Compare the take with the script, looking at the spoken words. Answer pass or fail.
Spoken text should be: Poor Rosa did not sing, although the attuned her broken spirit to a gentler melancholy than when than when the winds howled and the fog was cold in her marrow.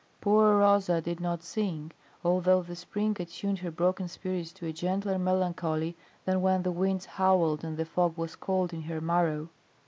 fail